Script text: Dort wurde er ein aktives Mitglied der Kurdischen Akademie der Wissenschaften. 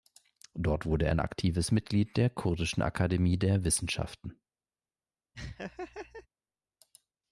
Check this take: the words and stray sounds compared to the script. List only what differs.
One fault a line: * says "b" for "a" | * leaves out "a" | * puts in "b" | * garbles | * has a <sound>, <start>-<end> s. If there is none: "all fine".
* has a laugh, 5.3-6.3 s